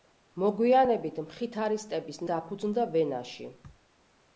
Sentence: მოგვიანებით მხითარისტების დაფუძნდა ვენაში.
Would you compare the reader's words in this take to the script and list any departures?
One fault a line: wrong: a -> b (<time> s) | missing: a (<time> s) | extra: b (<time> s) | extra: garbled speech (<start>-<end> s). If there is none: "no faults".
no faults